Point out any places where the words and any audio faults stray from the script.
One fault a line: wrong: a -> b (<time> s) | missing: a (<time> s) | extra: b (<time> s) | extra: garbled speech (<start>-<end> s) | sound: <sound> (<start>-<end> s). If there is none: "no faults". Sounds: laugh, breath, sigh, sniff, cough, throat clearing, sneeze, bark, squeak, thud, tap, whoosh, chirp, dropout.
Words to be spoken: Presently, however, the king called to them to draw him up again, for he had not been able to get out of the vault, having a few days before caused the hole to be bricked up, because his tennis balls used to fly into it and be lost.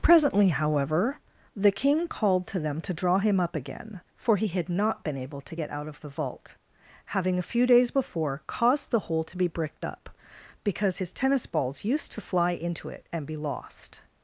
no faults